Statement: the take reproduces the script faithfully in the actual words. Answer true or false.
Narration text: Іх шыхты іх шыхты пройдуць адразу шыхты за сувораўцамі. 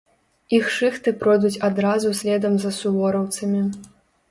false